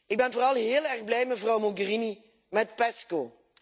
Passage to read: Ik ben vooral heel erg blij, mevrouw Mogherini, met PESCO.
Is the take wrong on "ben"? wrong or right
right